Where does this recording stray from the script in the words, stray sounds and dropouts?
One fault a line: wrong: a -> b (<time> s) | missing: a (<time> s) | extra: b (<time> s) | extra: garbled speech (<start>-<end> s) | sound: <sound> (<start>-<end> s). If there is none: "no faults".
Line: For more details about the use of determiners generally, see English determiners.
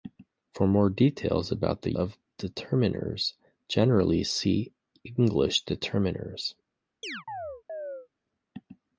missing: use (1.9 s)
sound: chirp (7.0-8.1 s)